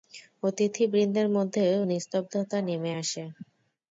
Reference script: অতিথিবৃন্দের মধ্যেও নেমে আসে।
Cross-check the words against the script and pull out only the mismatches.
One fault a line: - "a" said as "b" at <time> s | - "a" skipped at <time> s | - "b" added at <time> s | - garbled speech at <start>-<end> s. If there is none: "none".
- "নিস্তব্ধতা" added at 1.8 s